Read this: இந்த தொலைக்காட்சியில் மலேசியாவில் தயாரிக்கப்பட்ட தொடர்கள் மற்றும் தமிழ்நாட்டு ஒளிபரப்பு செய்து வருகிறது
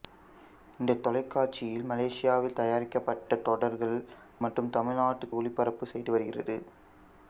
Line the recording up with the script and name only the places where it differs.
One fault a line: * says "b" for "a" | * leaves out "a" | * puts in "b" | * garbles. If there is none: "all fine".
all fine